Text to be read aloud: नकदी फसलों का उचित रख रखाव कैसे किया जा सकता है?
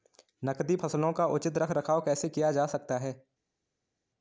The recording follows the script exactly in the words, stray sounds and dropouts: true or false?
true